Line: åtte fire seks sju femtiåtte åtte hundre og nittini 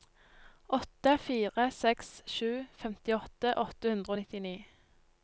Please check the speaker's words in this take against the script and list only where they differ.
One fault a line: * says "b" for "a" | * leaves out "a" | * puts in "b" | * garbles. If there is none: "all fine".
all fine